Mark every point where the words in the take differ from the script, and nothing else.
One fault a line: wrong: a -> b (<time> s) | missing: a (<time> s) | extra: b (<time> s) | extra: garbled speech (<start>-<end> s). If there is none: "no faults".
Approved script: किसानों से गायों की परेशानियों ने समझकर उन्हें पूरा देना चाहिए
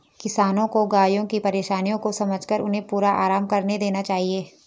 wrong: से -> को (0.7 s)
wrong: ने -> को (2.0 s)
extra: आराम करने (3.2 s)